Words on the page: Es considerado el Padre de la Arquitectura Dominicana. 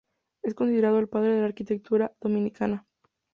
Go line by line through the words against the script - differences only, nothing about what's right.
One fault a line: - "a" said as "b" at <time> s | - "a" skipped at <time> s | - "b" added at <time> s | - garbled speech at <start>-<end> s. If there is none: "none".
none